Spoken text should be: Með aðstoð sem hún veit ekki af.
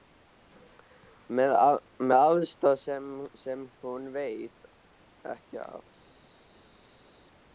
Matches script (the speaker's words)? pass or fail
pass